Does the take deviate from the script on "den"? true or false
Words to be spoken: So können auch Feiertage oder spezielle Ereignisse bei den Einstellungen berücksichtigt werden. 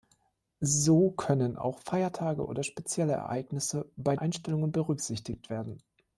true